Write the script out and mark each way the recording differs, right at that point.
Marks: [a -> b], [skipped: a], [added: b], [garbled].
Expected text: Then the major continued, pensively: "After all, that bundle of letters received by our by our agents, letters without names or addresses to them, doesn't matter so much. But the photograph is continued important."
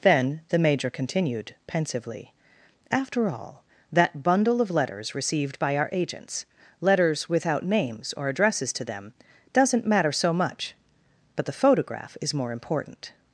Then the major continued, pensively: "After all, that bundle of letters received by our [skipped: by our] agents, letters without names or addresses to them, doesn't matter so much. But the photograph is [continued -> more] important."